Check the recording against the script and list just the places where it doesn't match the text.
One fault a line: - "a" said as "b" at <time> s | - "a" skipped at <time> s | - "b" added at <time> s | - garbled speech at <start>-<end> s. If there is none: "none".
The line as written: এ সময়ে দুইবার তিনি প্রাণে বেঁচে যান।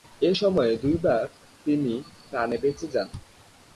none